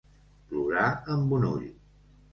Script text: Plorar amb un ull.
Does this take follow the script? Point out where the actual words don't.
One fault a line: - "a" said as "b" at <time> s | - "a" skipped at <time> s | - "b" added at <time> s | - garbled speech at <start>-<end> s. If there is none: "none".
none